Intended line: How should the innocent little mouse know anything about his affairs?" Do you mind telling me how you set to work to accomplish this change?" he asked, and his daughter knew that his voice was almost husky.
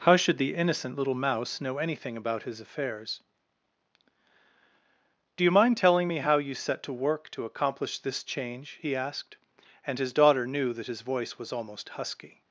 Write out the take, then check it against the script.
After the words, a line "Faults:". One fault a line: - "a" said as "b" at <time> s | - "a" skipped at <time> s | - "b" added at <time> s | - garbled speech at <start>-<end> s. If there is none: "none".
How should the innocent little mouse know anything about his affairs?" Do you mind telling me how you set to work to accomplish this change?" he asked, and his daughter knew that his voice was almost husky.
Faults:
none